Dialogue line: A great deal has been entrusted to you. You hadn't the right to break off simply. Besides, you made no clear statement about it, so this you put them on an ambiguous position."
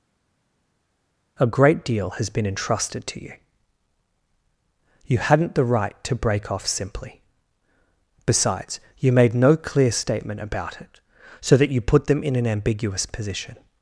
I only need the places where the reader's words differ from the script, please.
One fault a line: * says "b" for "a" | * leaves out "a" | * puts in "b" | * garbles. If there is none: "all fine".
* says "that" for "this"
* says "in" for "on"